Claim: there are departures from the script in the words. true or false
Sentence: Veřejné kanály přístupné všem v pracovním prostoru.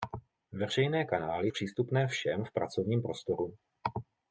false